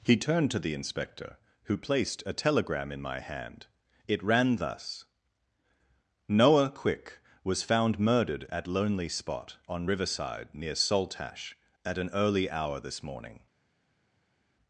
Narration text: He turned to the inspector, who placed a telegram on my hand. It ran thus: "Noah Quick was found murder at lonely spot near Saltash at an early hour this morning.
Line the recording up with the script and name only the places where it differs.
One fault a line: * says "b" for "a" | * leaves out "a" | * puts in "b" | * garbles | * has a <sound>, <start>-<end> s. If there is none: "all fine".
* says "in" for "on"
* says "murdered" for "murder"
* puts in "on riverside"